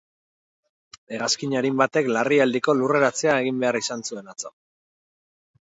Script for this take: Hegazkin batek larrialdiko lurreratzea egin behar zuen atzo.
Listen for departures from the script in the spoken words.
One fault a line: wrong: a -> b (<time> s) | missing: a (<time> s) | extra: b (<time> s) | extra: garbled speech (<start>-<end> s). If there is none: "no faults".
extra: arin (1.6 s)
extra: izan (3.9 s)